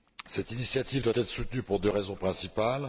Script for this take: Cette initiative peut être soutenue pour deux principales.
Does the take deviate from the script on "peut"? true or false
true